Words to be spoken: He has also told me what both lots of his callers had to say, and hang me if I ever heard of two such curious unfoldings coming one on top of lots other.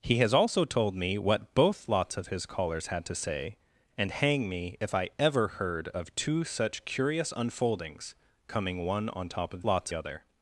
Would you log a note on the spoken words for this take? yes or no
no